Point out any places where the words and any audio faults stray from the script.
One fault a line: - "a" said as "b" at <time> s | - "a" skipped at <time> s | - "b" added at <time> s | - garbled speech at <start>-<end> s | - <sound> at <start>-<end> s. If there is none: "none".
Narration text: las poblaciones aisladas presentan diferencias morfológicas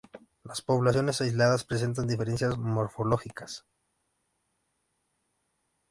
none